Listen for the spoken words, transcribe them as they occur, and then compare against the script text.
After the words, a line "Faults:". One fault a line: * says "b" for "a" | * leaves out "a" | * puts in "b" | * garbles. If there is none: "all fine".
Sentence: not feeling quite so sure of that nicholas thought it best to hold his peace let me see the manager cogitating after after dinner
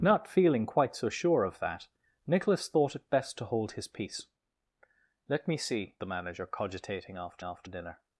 not feeling quite so sure of that nicholas thought it best to hold his peace let me see the manager cogitating after after dinner
Faults:
all fine